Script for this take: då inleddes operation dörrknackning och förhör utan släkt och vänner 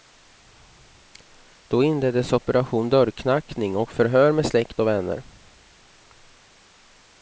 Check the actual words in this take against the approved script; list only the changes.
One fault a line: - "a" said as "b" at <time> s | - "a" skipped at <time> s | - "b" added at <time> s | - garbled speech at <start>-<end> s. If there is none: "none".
- "utan" said as "med" at 4.3 s